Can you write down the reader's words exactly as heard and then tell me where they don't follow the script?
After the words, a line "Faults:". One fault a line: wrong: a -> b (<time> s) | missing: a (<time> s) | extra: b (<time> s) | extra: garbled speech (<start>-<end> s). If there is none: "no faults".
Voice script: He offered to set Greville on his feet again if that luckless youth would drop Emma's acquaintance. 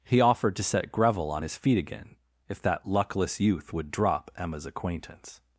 He offered to set Greville on his feet again if that luckless youth would drop Emma's acquaintance.
Faults:
no faults